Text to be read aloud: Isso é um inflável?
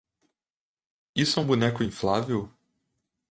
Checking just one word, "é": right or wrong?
right